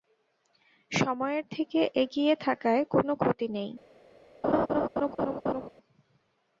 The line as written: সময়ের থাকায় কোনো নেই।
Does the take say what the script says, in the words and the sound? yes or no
no